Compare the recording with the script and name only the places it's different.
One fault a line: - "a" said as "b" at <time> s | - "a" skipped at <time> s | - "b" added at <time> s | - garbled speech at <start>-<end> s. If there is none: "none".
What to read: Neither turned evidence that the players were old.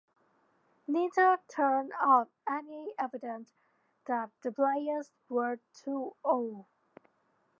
- "up any" added at 2.0 s
- "too" added at 5.7 s